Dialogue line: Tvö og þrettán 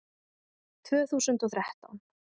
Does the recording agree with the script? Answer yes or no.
no